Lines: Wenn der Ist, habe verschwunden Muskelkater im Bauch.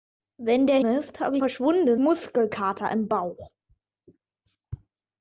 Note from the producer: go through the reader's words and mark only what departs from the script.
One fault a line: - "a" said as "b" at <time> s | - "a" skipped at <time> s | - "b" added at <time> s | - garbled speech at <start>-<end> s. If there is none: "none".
none